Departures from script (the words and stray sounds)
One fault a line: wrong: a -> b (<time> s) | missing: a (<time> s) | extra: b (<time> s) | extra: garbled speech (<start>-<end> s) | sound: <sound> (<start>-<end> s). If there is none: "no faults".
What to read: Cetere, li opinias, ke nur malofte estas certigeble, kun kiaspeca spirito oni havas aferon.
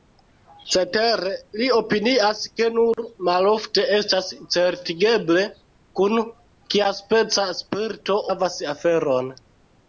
sound: dropout (2.9-3.0 s)
missing: oni (8.2 s)